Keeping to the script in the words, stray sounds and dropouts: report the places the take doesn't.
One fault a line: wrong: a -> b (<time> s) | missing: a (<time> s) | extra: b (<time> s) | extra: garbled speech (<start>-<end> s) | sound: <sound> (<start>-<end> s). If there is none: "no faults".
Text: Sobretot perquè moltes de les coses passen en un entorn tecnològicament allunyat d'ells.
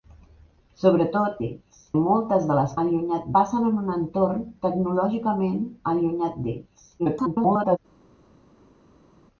wrong: perquè -> d'ells (1.4 s)
wrong: coses -> allunyat (2.9 s)
extra: garbled speech (7.0-7.8 s)